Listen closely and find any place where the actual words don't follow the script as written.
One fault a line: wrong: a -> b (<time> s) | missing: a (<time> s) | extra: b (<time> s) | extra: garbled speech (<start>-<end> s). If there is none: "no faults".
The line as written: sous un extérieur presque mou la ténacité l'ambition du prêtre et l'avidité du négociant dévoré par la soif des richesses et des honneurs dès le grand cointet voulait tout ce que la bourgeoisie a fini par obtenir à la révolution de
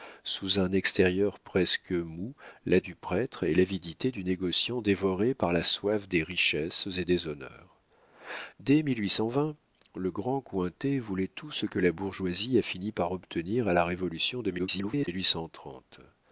missing: ténacité l'ambition (2.8 s)
extra: garbled speech (14.6-15.1 s)